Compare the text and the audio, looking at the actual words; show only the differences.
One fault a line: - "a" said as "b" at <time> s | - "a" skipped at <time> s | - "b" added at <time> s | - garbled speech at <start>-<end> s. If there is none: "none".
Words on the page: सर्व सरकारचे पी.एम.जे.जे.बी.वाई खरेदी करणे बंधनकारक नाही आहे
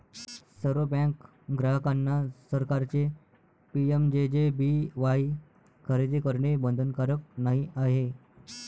- "बँक ग्राहकांना" added at 0.9 s